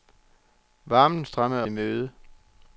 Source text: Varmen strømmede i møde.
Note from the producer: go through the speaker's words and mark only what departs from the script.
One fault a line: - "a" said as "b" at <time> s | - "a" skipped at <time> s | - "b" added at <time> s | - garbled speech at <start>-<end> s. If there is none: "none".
none